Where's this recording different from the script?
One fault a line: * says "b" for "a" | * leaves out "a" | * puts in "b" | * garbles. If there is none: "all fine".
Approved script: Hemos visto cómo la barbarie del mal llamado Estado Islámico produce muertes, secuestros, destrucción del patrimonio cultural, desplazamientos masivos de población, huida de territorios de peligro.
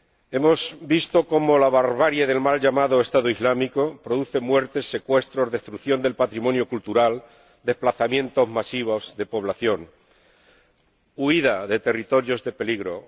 all fine